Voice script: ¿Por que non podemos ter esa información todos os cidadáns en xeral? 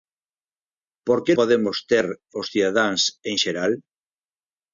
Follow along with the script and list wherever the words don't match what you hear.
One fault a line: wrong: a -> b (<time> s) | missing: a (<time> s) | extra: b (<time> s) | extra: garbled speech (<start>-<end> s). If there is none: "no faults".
missing: non (1.3 s)
missing: esa información todos (2.1 s)